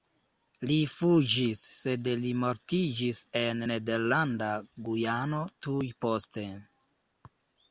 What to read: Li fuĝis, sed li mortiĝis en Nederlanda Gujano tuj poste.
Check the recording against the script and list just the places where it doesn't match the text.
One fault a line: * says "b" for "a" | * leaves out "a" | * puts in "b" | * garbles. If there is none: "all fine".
all fine